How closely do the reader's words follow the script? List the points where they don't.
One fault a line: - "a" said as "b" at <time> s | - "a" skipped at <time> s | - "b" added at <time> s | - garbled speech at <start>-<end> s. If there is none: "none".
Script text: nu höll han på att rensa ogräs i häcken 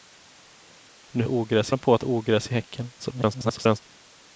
- "höll" said as "ogräs" at 1.3 s
- "rensa" skipped at 2.0 s
- garbled speech at 3.0-3.8 s